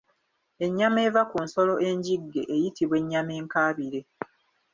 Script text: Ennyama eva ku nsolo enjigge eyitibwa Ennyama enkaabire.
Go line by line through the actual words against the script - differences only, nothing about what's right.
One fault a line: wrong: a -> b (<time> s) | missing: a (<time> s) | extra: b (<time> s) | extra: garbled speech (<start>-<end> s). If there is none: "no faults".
no faults